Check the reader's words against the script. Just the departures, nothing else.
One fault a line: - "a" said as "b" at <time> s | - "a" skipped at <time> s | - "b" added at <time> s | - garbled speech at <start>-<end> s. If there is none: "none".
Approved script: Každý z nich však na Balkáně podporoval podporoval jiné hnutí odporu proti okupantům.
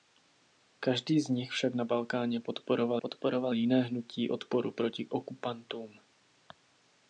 none